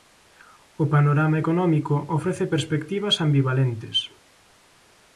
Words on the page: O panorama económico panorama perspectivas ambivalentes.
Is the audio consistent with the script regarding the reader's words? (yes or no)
no